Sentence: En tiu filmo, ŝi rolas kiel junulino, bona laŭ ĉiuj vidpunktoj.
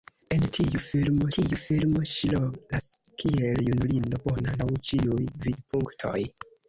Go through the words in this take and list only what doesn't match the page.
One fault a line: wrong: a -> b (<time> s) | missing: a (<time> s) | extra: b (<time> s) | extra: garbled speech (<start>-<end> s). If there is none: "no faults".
extra: tiu filmo (1.4 s)